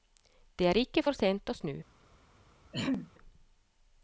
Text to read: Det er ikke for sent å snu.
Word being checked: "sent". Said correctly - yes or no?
yes